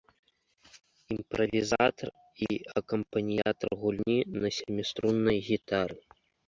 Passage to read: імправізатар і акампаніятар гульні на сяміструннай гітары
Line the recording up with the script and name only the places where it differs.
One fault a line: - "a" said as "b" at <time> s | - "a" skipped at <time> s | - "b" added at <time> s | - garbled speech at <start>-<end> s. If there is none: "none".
none